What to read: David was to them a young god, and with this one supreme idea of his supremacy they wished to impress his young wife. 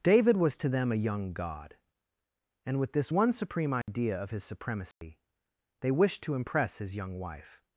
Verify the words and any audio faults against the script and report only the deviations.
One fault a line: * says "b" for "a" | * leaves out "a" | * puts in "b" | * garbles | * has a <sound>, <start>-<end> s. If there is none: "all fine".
* has a dropout, 3.8-3.9 s
* has a dropout, 4.9-5.0 s